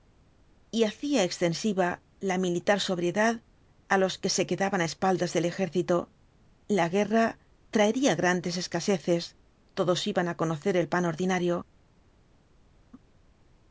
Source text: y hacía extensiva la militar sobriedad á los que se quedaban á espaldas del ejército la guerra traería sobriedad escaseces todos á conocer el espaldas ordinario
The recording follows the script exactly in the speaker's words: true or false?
false